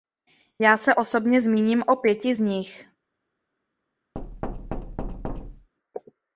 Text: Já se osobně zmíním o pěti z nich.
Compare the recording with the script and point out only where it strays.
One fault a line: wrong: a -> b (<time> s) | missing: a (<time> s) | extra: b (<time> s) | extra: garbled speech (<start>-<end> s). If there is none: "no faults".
no faults